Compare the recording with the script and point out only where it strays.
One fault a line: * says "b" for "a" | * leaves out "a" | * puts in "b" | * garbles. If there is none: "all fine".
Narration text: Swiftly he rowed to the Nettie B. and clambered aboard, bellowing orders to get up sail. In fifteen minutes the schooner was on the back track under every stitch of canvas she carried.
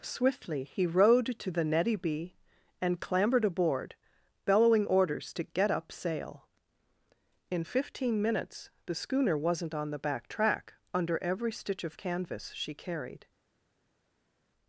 * says "wasn't" for "was"